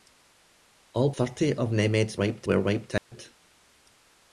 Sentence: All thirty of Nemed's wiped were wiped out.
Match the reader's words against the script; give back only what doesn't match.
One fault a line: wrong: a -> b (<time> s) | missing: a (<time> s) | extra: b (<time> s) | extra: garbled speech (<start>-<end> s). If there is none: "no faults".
no faults